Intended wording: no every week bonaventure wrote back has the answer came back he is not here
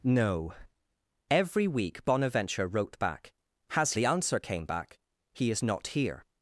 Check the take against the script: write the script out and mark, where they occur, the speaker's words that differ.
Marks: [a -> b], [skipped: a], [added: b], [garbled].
no every week bonaventure wrote back has the answer came back he is not here